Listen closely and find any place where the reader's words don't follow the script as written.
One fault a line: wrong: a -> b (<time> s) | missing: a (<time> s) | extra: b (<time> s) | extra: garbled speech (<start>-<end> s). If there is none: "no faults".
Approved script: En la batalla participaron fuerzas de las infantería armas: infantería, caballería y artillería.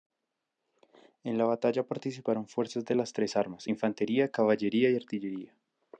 wrong: infantería -> tres (3.1 s)